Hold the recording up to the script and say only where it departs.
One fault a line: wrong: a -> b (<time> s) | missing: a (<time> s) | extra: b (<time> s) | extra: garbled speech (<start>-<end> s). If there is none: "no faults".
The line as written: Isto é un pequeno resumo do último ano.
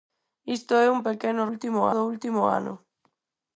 wrong: resumo -> último (1.5 s)